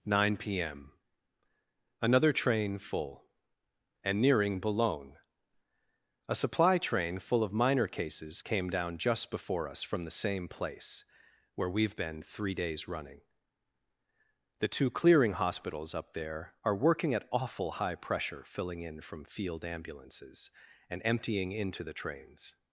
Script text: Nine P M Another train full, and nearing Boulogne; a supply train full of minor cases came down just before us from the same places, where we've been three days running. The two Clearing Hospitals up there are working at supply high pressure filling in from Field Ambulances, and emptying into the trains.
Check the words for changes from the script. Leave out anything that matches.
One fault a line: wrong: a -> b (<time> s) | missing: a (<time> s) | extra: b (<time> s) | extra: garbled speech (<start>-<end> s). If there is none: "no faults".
wrong: places -> place (10.5 s)
wrong: supply -> awful (17.3 s)